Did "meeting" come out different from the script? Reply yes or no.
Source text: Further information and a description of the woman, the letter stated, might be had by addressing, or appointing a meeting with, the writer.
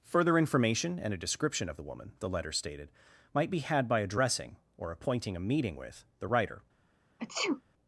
no